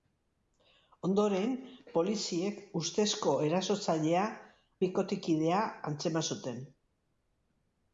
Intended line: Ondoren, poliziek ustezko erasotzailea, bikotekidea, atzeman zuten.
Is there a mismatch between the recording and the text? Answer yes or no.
no